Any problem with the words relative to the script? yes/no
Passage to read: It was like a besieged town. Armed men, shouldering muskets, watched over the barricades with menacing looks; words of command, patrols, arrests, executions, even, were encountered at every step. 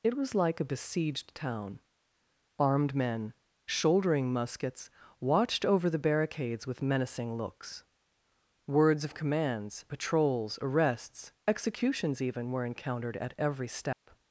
yes